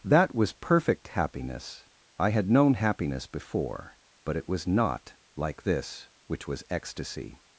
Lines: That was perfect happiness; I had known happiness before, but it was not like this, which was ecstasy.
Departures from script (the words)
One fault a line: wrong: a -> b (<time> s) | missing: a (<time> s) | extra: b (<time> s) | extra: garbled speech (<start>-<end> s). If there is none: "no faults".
no faults